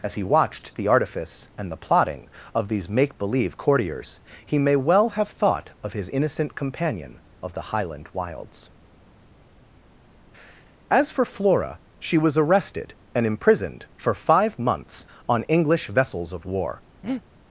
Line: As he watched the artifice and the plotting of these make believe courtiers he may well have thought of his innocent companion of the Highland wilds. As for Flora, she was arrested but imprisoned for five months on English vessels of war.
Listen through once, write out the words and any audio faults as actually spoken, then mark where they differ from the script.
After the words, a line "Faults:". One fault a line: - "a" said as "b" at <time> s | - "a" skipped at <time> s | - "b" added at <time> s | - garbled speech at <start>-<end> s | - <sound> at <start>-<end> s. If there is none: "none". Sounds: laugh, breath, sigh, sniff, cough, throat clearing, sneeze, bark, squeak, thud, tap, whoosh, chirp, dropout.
As he watched the artifice and the plotting of these make believe courtiers he may well have thought of his innocent companion of the Highland wilds. As for Flora, she was arrested and imprisoned for five months on English vessels of war.
Faults:
- "but" said as "and" at 13.1 s
- breath at 17.0-17.2 s